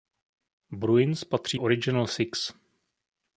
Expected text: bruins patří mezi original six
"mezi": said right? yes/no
no